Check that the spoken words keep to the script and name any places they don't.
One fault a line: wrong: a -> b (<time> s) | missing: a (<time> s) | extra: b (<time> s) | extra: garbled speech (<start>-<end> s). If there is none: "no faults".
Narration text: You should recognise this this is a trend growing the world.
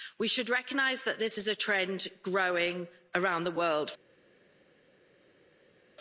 wrong: You -> We (0.2 s)
wrong: this -> that (1.0 s)
extra: around (3.1 s)